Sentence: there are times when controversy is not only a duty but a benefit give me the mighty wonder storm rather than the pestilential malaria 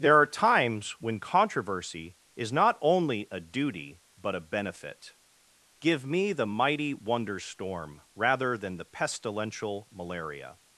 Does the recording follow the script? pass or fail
pass